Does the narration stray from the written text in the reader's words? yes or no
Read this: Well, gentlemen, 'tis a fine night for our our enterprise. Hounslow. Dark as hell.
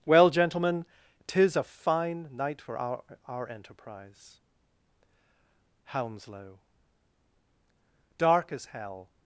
no